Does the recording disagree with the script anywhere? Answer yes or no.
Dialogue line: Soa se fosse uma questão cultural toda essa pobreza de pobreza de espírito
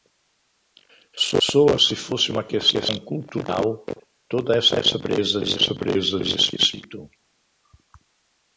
no